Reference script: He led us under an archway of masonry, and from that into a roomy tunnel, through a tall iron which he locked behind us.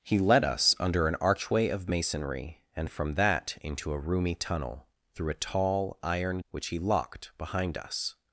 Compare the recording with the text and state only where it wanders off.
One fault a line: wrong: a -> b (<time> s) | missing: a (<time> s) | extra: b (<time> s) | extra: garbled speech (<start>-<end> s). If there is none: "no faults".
no faults